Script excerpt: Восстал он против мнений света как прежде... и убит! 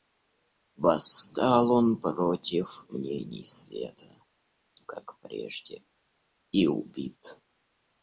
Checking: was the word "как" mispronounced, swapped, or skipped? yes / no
no